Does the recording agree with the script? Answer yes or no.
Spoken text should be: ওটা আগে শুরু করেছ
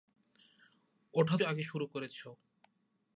yes